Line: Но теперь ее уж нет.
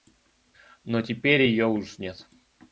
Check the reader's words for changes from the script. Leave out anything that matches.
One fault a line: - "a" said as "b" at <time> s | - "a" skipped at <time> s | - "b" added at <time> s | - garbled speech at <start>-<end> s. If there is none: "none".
none